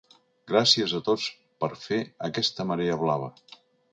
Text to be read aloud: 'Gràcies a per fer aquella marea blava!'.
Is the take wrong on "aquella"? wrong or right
wrong